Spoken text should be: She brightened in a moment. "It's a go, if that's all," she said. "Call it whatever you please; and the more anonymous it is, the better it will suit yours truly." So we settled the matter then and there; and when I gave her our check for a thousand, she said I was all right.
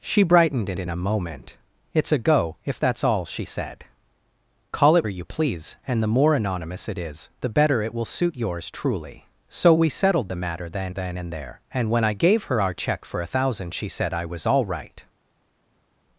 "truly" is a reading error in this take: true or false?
false